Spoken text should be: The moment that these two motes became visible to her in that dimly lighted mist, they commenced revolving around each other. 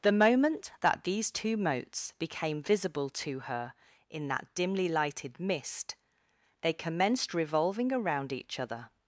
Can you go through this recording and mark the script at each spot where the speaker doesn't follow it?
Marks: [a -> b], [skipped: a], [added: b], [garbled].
The moment that these two motes became visible to her in that dimly lighted mist, they commenced revolving around each other.